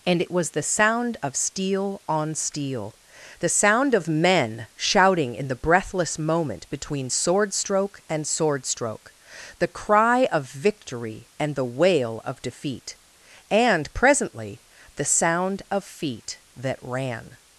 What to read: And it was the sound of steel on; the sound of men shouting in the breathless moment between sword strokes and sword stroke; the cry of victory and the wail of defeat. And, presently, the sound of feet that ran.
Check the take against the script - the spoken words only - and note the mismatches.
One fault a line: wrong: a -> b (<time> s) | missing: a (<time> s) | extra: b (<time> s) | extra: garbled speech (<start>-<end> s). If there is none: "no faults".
extra: steel (2.4 s)
wrong: strokes -> stroke (7.5 s)